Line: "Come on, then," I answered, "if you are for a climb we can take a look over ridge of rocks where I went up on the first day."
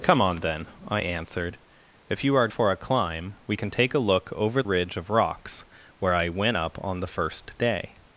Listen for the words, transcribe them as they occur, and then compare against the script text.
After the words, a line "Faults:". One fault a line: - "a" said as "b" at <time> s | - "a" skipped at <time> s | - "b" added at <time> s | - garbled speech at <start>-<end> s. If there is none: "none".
"Come on, then," I answered, "if you are for a climb we can take a look over ridge of rocks where I went up on the first day."
Faults:
none